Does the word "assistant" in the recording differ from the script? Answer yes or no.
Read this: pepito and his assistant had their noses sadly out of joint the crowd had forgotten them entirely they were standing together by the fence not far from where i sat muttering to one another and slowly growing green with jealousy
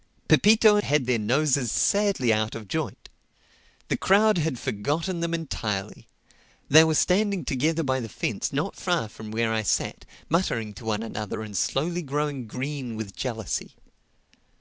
yes